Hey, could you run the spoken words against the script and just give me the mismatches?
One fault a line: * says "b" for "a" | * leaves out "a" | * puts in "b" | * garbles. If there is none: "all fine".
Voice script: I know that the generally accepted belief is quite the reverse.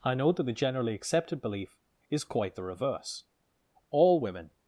* puts in "All women"